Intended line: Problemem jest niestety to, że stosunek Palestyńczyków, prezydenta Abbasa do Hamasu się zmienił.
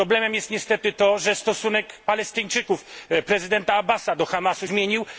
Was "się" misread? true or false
true